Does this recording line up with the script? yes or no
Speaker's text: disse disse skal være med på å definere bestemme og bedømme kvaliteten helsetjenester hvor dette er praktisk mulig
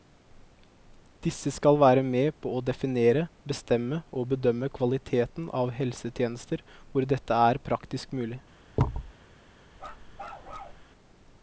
no